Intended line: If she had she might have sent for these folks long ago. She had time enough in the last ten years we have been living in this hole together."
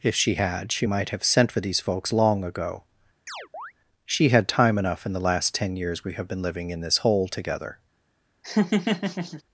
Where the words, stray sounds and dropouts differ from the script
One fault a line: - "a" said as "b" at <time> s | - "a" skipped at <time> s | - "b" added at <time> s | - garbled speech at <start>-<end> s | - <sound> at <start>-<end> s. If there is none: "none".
- chirp at 3.3-3.7 s
- laugh at 8.4-9.4 s